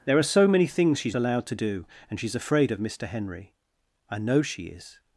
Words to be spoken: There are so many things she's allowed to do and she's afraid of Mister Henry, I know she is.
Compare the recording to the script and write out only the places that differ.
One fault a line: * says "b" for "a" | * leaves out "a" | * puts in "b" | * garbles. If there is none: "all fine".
all fine